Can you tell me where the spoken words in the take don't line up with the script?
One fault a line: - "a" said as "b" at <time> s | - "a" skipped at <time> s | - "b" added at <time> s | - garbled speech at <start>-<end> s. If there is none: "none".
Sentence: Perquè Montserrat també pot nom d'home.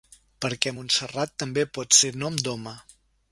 - "ser" added at 2.0 s